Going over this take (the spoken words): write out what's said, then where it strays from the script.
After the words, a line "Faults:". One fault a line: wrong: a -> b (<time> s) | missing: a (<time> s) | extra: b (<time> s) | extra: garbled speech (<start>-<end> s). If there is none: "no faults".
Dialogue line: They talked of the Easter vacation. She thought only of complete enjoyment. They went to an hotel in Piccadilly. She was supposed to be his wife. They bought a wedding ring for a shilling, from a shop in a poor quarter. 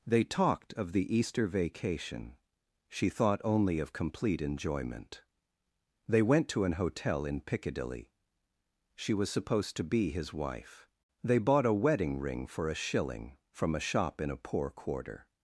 They talked of the Easter vacation. She thought only of complete enjoyment. They went to an hotel in Piccadilly. She was supposed to be his wife. They bought a wedding ring for a shilling, from a shop in a poor quarter.
Faults:
no faults